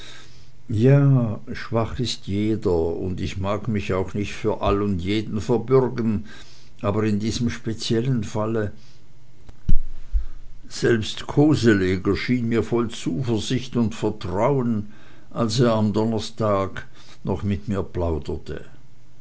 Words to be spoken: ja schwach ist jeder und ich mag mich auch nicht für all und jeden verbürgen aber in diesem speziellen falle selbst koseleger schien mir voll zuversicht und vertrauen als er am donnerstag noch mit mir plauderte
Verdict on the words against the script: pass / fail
pass